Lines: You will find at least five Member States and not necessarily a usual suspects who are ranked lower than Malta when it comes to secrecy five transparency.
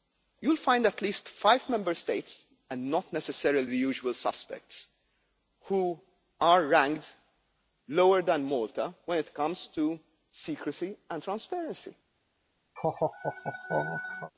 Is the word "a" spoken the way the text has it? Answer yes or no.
no